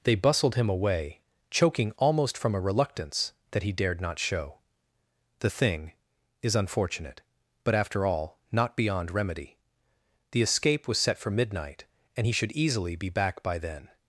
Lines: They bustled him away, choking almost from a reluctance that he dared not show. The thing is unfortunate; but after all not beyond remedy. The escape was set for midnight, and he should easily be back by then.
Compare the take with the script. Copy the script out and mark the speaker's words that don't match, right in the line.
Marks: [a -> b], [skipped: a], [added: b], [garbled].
They bustled him away, choking almost from a reluctance that he dared not show. The thing is unfortunate; but after all not beyond remedy. The escape was set for midnight, and he should easily be back by then.